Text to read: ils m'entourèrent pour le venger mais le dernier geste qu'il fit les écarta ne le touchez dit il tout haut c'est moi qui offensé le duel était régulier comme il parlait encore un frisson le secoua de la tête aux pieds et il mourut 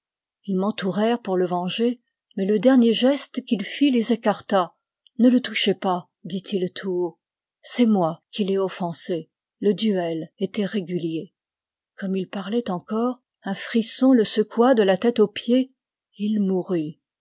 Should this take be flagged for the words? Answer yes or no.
yes